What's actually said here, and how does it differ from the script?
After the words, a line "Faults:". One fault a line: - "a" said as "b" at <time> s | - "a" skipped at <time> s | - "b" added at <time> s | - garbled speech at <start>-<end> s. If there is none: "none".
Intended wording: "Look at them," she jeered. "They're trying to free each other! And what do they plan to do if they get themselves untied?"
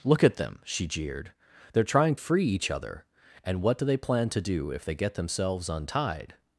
"Look at them," she jeered. "They're trying free each other! And what do they plan to do if they get themselves untied?"
Faults:
- "to" skipped at 2.1 s